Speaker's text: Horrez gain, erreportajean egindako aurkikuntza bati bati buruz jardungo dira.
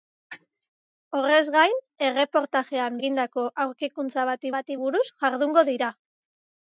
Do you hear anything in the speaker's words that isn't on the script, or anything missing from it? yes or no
no